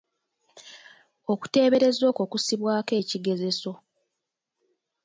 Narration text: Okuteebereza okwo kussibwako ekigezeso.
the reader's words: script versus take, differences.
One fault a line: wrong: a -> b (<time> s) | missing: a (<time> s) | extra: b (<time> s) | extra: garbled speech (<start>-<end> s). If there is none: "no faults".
no faults